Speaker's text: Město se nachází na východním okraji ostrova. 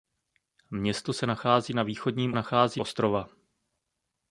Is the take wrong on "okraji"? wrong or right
wrong